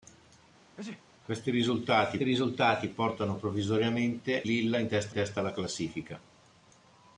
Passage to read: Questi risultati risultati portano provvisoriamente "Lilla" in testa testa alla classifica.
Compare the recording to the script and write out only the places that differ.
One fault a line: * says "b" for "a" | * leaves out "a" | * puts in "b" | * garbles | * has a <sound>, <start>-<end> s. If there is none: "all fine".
* has a sneeze, 0.8-1.1 s